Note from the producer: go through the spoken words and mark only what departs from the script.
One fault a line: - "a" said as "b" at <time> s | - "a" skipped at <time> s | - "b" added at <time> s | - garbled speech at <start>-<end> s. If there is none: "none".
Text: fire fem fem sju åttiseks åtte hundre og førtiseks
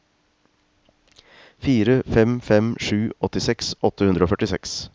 none